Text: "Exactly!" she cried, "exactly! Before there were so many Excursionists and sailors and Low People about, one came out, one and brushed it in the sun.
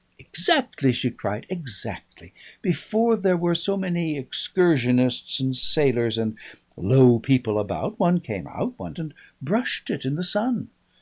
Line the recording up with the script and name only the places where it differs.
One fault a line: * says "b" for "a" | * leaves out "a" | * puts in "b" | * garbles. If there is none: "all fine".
all fine